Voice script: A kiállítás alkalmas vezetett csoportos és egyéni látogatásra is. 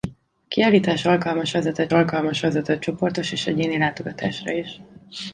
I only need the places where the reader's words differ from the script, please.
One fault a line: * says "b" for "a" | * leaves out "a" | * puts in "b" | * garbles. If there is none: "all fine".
* puts in "alkalmas vezetett"